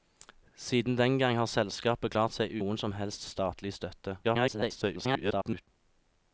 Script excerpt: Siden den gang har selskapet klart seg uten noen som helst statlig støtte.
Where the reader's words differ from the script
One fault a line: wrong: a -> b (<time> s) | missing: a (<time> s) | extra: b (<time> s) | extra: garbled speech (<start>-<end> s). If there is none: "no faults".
missing: uten (2.5 s)
extra: garbled speech (4.2-5.7 s)